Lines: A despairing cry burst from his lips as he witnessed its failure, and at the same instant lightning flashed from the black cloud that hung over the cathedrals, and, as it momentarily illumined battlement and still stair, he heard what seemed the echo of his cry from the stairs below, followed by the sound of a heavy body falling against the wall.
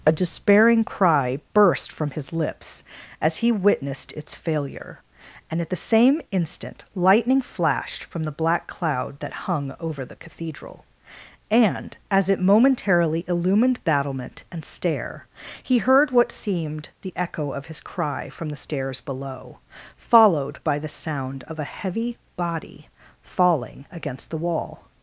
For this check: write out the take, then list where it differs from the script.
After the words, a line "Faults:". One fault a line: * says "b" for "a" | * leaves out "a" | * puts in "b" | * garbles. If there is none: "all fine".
A despairing cry burst from his lips as he witnessed its failure, and at the same instant lightning flashed from the black cloud that hung over the cathedral, and, as it momentarily illumined battlement and stair, he heard what seemed the echo of his cry from the stairs below, followed by the sound of a heavy body falling against the wall.
Faults:
* says "cathedral" for "cathedrals"
* leaves out "still"